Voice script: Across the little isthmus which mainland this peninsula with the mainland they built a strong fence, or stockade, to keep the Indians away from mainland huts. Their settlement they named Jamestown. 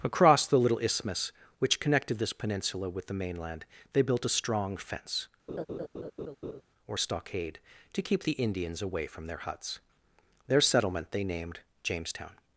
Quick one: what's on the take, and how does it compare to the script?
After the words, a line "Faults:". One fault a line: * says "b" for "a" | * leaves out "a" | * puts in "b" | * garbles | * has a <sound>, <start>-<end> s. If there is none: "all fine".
Across the little isthmus which connected this peninsula with the mainland they built a strong fence, or stockade, to keep the Indians away from their huts. Their settlement they named Jamestown.
Faults:
* says "connected" for "mainland"
* has a laugh, 5.5-6.6 s
* says "their" for "mainland"